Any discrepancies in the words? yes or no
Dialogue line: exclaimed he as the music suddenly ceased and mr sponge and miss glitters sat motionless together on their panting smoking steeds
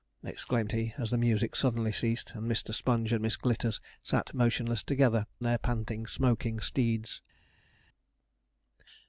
yes